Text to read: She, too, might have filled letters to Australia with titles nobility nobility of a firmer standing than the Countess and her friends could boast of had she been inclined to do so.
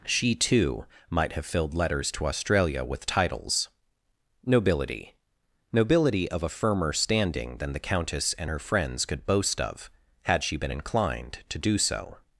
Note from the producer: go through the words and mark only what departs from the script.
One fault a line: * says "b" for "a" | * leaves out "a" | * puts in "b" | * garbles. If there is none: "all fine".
all fine